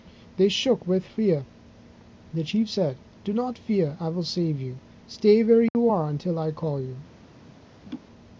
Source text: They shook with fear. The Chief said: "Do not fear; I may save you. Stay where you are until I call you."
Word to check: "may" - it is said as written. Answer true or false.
false